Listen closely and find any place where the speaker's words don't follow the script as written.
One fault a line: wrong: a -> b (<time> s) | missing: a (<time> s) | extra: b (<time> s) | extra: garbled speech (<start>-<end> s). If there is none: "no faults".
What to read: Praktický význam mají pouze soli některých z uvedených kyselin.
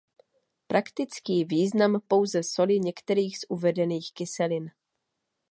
missing: mají (2.0 s)